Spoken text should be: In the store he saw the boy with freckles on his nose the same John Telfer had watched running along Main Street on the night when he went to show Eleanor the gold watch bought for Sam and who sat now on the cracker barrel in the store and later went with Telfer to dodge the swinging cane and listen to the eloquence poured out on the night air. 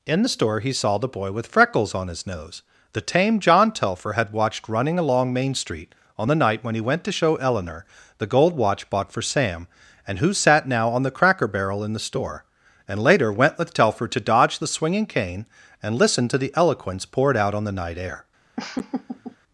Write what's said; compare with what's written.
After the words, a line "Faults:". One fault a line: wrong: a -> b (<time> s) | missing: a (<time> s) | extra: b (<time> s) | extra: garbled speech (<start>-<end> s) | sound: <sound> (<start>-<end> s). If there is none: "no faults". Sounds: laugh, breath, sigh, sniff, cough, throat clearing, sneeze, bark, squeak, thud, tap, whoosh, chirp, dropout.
In the store he saw the boy with freckles on his nose the tame John Telfer had watched running along Main Street on the night when he went to show Eleanor the gold watch bought for Sam and who sat now on the cracker barrel in the store and later went with Telfer to dodge the swinging cane and listen to the eloquence poured out on the night air.
Faults:
wrong: same -> tame (3.0 s)
sound: laugh (18.6-19.4 s)